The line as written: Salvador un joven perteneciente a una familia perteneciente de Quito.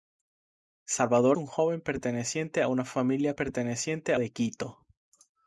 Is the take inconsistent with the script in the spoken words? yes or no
no